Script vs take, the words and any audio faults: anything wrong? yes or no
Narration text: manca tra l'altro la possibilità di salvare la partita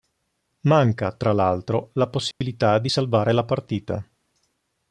yes